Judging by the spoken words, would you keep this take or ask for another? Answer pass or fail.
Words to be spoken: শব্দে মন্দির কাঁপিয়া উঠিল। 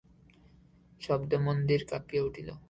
pass